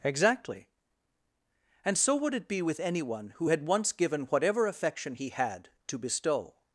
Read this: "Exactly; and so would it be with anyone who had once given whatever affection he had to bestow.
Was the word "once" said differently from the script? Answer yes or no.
no